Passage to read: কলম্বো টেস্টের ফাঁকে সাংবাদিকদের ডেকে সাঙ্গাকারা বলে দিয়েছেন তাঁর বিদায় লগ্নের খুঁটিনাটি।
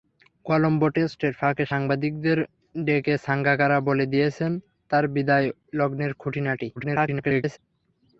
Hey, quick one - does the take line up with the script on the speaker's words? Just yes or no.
no